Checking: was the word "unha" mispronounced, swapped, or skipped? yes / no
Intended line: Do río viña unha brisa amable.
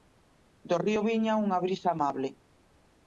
no